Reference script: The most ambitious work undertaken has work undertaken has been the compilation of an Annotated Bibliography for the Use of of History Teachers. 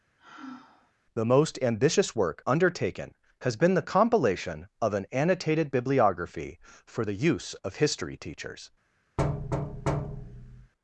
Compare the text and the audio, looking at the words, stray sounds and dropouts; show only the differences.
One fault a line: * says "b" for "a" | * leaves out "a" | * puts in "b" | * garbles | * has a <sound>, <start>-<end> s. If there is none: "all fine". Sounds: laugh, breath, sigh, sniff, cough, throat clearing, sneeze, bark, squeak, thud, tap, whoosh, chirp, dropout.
* has a sigh, 0.2-0.9 s
* leaves out "work undertaken has"
* leaves out "of"
* has a thud, 9.2-10.7 s